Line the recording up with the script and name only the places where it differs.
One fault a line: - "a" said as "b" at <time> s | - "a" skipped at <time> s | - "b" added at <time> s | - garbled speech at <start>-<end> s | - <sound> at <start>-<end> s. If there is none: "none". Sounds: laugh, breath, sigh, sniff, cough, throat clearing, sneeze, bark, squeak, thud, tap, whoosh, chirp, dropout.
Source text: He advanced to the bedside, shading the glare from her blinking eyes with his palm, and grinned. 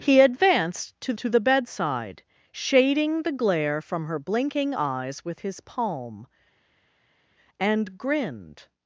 - "to" added at 1.2 s